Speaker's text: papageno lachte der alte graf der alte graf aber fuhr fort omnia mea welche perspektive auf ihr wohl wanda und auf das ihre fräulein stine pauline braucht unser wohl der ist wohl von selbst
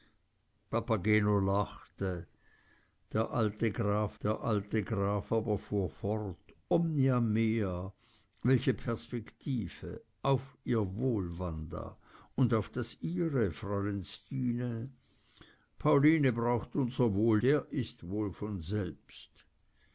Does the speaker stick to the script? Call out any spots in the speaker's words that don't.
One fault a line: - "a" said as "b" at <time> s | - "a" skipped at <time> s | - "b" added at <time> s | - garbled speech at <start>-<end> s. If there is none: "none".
none